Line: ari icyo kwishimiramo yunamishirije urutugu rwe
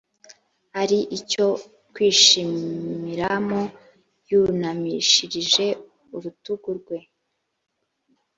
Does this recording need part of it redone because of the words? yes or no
no